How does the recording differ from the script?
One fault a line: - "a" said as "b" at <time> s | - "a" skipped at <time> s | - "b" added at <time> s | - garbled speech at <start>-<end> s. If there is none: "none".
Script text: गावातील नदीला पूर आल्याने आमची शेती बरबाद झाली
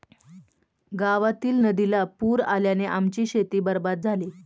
none